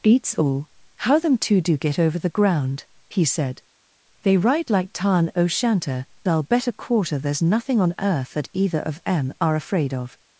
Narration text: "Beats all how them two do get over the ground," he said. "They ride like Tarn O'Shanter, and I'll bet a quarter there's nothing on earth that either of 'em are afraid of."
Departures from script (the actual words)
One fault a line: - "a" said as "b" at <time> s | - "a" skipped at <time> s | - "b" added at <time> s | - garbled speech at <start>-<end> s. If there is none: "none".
- "and" skipped at 6.1 s